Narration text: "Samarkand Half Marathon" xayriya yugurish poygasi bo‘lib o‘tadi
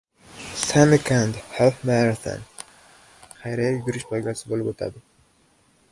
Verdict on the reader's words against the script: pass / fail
pass